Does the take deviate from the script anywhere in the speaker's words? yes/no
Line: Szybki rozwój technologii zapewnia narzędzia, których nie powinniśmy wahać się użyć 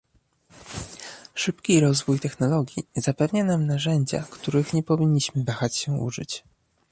yes